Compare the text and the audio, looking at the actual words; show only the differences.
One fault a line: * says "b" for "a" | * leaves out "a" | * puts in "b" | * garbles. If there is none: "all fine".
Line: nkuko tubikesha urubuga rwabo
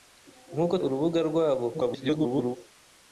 * leaves out "tubikesha"
* garbles